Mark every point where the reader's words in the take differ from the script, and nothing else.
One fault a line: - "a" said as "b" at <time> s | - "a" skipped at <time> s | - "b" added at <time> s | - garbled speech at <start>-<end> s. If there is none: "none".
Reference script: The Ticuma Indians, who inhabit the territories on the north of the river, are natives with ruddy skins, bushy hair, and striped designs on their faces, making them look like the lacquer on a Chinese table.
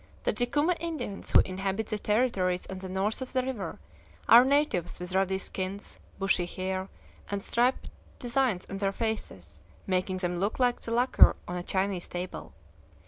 none